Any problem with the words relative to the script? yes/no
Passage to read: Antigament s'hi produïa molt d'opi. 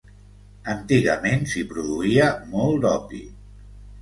no